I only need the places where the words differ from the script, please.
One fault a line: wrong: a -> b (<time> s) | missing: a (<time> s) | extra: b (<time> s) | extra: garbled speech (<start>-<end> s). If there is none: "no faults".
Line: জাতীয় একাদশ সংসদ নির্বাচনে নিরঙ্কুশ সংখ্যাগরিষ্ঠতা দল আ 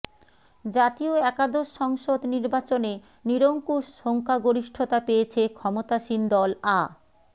extra: পেয়েছে ক্ষমতাসীন (5.0 s)